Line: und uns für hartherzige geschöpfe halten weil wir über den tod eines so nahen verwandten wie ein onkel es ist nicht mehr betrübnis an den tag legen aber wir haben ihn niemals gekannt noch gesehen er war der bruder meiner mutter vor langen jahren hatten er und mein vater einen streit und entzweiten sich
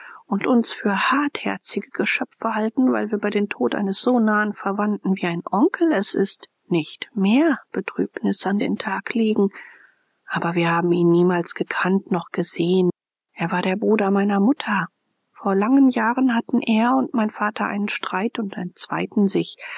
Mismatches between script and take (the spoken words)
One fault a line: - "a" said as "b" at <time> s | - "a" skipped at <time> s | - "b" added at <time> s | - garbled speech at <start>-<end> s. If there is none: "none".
none